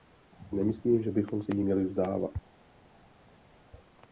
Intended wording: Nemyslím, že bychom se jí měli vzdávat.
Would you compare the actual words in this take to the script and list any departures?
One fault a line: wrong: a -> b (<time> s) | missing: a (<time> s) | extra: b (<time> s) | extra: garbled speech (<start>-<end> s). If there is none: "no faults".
no faults